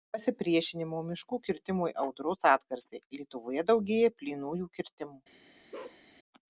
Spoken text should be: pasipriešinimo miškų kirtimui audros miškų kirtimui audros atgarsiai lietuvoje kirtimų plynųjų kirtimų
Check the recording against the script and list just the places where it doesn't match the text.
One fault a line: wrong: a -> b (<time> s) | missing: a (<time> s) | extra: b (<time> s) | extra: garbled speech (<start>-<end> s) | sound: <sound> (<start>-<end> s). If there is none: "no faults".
missing: miškų kirtimui audros (2.5 s)
wrong: kirtimų -> daugėja (3.7 s)
sound: bark (5.7-6.0 s)